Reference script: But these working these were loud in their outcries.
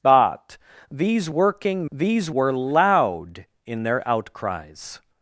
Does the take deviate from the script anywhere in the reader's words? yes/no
no